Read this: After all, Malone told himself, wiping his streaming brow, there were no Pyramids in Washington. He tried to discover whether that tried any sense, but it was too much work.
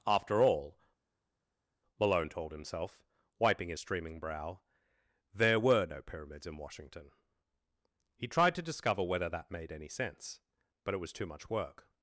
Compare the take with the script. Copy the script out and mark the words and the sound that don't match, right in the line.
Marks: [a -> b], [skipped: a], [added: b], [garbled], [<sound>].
After all, Malone told himself, wiping his streaming brow, there were no Pyramids in Washington. He tried to discover whether that [tried -> made] any sense, but it was too much work.